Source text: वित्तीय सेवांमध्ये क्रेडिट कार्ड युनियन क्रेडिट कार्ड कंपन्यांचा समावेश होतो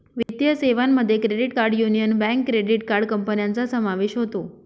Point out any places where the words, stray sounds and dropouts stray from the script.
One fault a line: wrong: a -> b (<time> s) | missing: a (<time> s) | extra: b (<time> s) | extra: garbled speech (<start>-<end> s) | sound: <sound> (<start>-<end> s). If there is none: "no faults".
sound: dropout (0.2-0.3 s)
extra: बँक (2.2 s)